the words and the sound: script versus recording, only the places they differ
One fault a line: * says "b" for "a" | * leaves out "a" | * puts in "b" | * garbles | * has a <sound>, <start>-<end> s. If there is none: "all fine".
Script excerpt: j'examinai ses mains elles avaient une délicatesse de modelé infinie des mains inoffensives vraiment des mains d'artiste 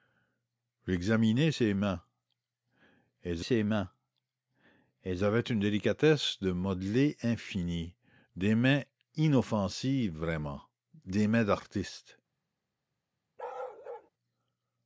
* puts in "ses mains elles"
* has a bark, 13.4-14.1 s